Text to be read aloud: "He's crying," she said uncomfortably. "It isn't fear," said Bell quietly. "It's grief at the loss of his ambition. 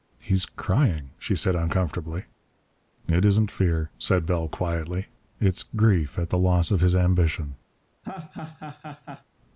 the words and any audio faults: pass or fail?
fail